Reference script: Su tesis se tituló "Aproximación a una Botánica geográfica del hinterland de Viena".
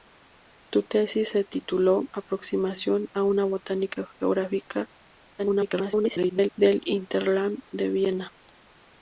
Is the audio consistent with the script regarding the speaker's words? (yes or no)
no